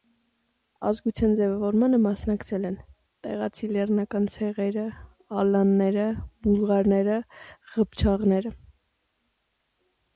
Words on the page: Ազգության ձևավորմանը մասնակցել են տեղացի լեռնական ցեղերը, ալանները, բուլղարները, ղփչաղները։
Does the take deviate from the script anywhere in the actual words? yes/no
no